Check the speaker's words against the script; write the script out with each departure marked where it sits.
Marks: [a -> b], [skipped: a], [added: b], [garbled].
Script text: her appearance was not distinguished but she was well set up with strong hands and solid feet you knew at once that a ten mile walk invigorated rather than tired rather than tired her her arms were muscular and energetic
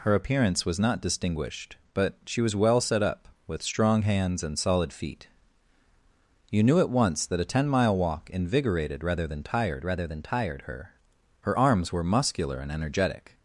her appearance was not distinguished but she was well set up with strong hands and solid feet you knew at once that a ten mile walk invigorated rather than tired rather than tired her her arms were muscular and energetic